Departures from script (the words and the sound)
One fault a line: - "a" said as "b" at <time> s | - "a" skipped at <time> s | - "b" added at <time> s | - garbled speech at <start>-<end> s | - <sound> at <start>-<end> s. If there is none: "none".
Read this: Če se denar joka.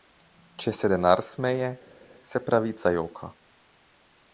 - "smeje se pravica" added at 1.3 s